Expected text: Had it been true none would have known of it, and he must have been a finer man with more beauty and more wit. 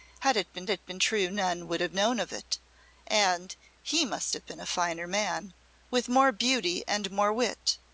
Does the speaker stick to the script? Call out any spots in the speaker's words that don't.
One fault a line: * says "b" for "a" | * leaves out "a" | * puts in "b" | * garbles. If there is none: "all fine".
* puts in "it been"